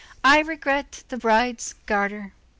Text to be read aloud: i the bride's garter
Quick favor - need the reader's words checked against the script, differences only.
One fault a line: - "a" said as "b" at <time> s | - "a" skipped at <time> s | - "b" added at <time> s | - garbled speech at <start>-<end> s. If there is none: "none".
- "regret" added at 0.4 s